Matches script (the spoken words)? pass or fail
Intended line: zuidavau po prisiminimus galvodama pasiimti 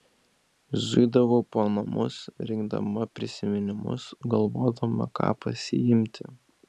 fail